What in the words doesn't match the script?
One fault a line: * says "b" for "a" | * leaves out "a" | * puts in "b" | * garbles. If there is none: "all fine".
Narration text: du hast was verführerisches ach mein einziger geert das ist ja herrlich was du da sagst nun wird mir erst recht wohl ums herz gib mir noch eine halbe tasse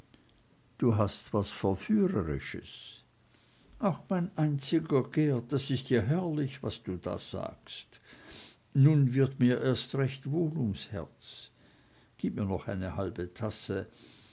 all fine